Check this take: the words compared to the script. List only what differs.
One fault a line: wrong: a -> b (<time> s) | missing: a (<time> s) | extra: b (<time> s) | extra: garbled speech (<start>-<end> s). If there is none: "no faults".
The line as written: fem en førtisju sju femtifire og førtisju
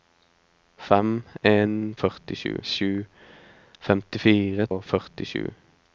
no faults